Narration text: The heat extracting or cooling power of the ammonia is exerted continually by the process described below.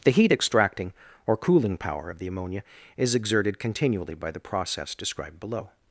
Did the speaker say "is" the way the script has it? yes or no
yes